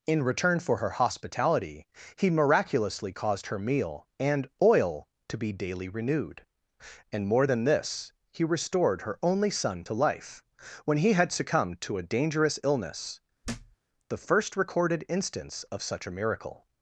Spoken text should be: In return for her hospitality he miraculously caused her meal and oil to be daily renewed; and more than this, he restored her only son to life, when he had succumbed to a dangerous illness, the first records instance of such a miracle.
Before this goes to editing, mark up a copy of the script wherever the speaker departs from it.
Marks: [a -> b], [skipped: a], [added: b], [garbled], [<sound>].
In return for her hospitality he miraculously caused her meal and oil to be daily renewed; and more than this, he restored her only son to life, when he had succumbed to a dangerous illness, [thud] the first [records -> recorded] instance of such a miracle.